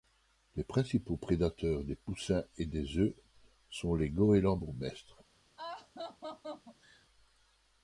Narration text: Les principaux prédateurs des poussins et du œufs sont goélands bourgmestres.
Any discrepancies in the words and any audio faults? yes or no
yes